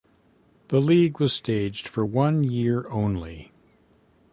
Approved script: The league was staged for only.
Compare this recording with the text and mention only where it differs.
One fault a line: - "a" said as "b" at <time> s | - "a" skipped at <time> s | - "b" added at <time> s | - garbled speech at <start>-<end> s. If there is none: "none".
- "one year" added at 2.0 s